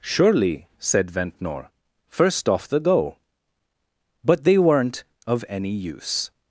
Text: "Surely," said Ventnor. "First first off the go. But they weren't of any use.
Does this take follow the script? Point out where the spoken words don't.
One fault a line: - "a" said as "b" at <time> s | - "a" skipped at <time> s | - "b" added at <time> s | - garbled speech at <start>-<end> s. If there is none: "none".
- "first" skipped at 2.5 s